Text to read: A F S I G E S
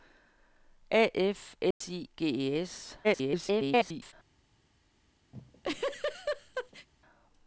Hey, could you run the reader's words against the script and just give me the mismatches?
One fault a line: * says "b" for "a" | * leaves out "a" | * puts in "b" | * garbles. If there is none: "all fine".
* garbles